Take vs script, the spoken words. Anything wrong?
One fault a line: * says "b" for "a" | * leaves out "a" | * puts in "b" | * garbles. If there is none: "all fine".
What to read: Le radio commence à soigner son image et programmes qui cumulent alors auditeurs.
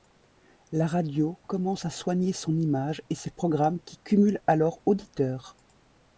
* says "La" for "Le"
* puts in "ses"